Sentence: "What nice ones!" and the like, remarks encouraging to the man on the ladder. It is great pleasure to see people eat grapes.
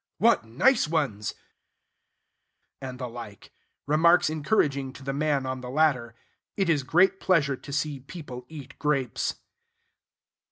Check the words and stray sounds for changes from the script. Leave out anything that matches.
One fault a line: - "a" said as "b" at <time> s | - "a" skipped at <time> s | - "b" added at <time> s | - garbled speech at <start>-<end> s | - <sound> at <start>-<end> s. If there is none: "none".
none